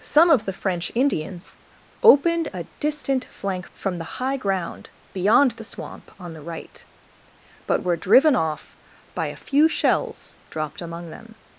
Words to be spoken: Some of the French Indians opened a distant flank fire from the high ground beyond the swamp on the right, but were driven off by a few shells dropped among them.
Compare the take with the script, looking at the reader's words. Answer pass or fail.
fail